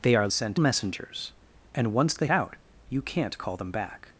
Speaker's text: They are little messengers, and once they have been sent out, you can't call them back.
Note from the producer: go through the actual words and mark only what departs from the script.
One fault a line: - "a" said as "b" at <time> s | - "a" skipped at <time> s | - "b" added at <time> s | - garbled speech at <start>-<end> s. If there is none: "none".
- "little" said as "sent" at 0.3 s
- "have been sent" skipped at 2.3 s